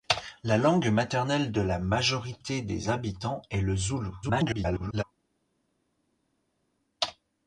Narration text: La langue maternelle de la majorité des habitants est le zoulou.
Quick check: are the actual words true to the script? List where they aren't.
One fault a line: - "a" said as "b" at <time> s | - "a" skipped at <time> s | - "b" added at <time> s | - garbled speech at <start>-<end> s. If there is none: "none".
- garbled speech at 4.2-5.0 s